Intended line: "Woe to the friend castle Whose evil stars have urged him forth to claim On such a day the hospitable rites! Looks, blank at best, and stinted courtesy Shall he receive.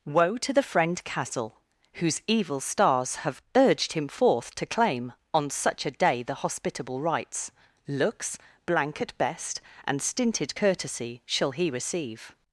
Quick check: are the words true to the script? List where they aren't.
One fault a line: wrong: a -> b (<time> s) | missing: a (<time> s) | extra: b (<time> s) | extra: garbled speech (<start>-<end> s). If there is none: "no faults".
no faults